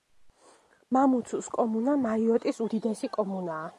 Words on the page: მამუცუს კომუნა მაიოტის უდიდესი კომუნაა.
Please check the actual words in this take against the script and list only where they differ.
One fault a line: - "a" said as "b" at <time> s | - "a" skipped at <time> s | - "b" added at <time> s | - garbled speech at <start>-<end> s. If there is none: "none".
none